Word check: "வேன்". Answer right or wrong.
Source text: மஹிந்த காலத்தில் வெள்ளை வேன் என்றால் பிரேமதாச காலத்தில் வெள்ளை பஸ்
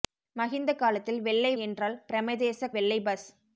wrong